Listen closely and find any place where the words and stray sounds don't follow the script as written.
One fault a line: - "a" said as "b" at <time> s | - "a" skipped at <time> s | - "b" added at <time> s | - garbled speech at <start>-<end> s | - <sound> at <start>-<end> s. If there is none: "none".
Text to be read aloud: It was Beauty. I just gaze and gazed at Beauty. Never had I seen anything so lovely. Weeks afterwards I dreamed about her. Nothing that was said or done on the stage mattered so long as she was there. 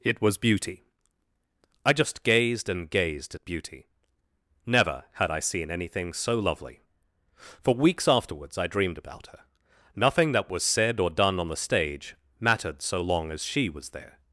- "gaze" said as "gazed" at 2.2 s
- "For" added at 7.3 s